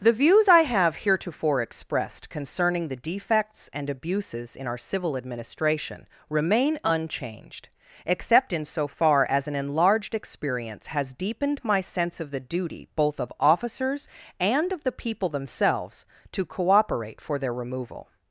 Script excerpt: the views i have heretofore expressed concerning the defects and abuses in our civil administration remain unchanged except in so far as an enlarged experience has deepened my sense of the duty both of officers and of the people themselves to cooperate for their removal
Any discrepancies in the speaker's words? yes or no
no